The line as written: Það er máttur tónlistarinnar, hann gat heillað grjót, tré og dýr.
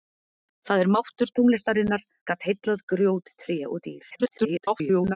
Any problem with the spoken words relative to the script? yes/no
yes